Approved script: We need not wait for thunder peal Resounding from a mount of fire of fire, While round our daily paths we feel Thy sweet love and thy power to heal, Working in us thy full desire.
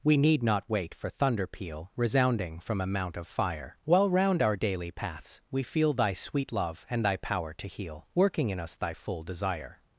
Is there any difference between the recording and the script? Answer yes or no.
yes